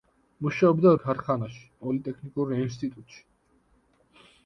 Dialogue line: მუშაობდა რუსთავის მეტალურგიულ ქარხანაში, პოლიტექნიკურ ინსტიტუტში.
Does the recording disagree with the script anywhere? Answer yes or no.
yes